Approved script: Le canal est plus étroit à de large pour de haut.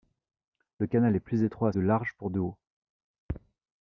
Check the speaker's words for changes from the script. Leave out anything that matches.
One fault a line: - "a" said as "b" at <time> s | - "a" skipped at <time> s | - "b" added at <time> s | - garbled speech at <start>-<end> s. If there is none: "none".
none